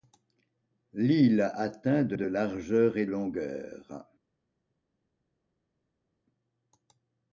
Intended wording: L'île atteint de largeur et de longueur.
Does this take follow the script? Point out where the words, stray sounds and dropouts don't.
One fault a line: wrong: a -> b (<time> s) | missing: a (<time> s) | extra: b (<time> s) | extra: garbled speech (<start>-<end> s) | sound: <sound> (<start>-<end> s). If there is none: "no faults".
extra: de (2.1 s)
missing: de (3.1 s)